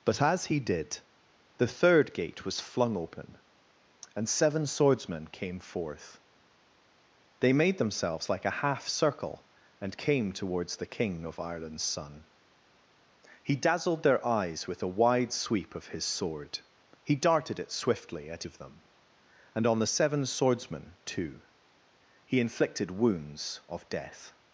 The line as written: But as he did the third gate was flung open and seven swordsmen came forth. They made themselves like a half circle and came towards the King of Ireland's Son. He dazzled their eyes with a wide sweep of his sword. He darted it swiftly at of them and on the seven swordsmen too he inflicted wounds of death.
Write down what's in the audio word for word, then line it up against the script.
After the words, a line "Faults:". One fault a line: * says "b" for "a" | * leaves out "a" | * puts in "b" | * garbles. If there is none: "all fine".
But as he did the third gate was flung open and seven swordsmen came forth. They made themselves like a half circle and came towards the King of Ireland's Son. He dazzled their eyes with a wide sweep of his sword. He darted it swiftly at of them and on the seven swordsmen too he inflicted wounds of death.
Faults:
all fine